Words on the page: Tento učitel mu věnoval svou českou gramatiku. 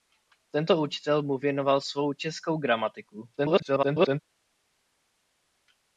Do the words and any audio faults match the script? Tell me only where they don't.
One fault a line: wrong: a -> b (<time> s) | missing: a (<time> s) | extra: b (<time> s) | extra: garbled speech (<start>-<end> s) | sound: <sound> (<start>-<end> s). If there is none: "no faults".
extra: garbled speech (3.4-4.2 s)